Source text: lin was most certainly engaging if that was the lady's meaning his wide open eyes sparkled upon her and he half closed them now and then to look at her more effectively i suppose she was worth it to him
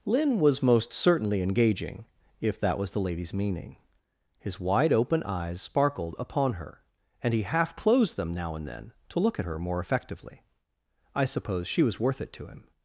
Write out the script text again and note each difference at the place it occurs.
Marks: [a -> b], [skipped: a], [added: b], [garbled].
lin was most certainly engaging if that was the lady's meaning his wide open eyes sparkled upon her and he half closed them now and then to look at her more effectively i suppose she was worth it to him